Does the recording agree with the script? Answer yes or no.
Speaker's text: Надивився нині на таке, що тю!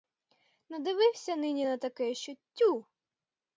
yes